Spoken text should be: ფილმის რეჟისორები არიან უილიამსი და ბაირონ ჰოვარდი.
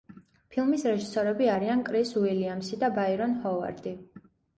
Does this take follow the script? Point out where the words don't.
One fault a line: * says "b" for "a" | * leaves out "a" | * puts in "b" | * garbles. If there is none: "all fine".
* puts in "კრის"